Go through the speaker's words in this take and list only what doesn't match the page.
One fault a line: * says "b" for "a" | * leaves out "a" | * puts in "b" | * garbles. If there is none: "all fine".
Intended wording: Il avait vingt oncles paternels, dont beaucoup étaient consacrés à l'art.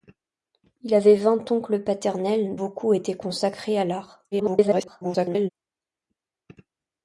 * leaves out "dont"
* garbles